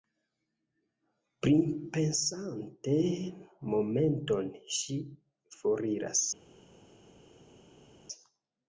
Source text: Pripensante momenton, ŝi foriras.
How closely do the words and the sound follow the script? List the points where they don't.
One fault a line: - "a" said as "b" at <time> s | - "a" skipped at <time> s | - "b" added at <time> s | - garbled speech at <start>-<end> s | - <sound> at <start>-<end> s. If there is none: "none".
none